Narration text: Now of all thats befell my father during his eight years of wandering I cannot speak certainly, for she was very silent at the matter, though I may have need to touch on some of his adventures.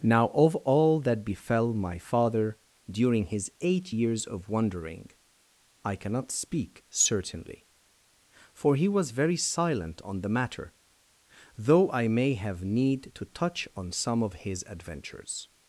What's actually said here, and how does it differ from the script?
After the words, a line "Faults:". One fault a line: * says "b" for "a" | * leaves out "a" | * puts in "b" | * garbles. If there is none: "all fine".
Now of all that befell my father during his eight years of wandering I cannot speak certainly, for he was very silent on the matter, though I may have need to touch on some of his adventures.
Faults:
* says "that" for "thats"
* says "he" for "she"
* says "on" for "at"